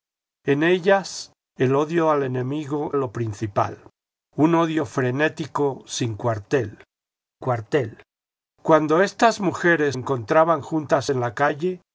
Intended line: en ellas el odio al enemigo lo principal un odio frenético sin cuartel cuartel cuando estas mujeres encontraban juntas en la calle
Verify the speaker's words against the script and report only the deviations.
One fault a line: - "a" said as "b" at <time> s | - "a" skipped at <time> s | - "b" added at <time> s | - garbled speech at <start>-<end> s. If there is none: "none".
none